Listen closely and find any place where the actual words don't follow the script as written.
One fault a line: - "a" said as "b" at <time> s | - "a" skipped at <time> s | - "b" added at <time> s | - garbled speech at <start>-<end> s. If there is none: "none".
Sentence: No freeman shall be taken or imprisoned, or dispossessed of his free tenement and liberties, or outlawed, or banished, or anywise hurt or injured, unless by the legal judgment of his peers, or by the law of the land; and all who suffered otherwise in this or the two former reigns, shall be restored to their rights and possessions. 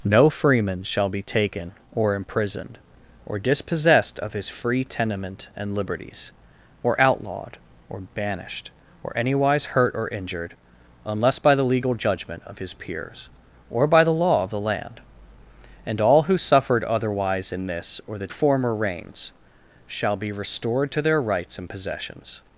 - "two" skipped at 18.3 s